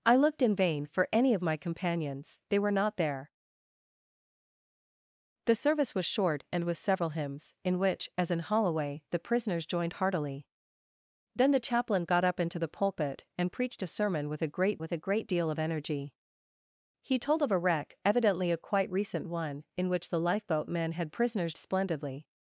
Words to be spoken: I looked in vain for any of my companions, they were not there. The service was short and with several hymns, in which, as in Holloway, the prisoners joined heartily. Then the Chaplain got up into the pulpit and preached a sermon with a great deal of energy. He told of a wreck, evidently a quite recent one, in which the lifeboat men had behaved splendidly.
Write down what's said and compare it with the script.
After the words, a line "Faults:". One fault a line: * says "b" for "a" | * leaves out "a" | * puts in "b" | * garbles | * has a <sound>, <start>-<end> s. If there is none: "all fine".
I looked in vain for any of my companions, they were not there. The service was short and with several hymns, in which, as in Holloway, the prisoners joined heartily. Then the Chaplain got up into the pulpit and preached a sermon with a great with a great deal of energy. He told of a wreck, evidently a quite recent one, in which the lifeboat men had prisoners splendidly.
Faults:
* puts in "with a great"
* says "prisoners" for "behaved"